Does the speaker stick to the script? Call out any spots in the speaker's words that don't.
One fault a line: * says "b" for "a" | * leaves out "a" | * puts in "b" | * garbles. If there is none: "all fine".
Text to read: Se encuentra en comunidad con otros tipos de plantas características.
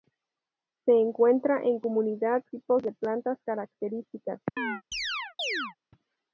* leaves out "con otros"